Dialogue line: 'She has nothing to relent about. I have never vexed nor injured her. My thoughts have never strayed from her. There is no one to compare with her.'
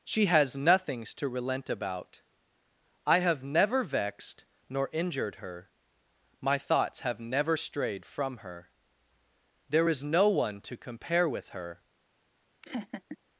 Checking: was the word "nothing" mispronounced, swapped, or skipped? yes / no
yes